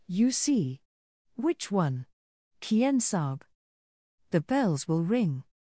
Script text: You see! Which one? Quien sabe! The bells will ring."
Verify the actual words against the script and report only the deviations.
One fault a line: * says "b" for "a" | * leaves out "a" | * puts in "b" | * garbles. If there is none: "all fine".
all fine